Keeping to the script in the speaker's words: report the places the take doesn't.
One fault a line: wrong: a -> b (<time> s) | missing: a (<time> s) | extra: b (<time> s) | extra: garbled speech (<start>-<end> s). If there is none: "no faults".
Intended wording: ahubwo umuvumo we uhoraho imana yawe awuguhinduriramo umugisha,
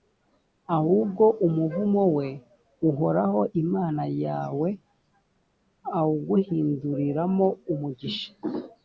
no faults